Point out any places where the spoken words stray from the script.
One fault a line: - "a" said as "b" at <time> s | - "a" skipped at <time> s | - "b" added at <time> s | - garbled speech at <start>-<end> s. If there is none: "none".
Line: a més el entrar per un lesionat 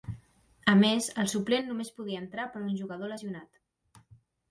- "suplent només podia" added at 1.4 s
- "jugador" added at 2.8 s